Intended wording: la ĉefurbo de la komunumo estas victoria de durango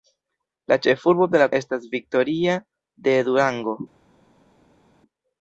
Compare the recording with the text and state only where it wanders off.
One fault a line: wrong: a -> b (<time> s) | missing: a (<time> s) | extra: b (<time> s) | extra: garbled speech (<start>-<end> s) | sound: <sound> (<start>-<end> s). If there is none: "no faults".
missing: komunumo (1.5 s)